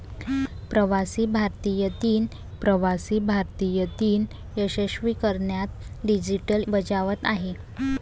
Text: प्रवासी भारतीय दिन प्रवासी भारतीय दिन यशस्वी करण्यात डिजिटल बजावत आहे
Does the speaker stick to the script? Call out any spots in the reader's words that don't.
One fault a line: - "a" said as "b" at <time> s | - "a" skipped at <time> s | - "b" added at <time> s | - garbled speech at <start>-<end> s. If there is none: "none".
none